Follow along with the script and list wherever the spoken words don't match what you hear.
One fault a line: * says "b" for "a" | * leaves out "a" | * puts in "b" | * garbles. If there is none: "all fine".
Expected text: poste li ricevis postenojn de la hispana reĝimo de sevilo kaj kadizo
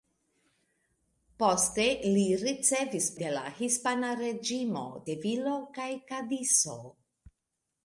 * leaves out "postenojn"
* leaves out "de"